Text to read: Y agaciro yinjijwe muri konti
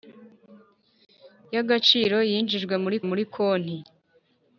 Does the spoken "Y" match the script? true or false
true